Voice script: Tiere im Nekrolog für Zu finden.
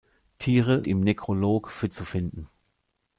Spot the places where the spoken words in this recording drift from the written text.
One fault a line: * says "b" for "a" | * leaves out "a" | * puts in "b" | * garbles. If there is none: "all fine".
all fine